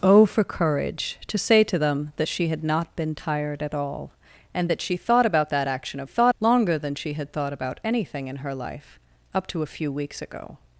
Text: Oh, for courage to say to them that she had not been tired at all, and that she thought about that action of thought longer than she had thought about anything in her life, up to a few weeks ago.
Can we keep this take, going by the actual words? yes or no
yes